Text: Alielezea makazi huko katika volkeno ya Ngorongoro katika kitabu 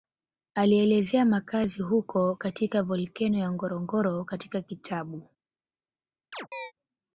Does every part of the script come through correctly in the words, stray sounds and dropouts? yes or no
no